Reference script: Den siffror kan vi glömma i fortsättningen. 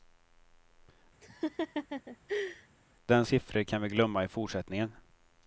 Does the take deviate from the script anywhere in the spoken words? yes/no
no